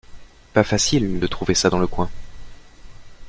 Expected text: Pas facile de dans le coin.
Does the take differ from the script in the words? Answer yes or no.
yes